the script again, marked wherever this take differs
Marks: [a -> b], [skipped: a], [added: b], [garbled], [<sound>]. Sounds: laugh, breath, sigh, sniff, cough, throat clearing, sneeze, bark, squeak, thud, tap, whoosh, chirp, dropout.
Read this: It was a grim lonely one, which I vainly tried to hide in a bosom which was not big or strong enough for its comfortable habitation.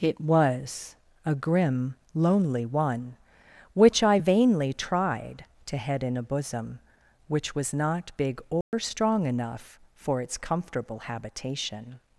It was a grim lonely one, which I vainly tried to [hide -> head] in a bosom which was not big or [dropout] strong enough for its comfortable habitation.